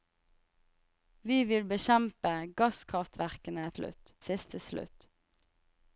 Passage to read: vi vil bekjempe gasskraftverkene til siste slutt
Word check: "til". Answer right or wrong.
wrong